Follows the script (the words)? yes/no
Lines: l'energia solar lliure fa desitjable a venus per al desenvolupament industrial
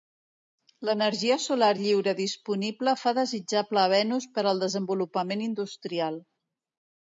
no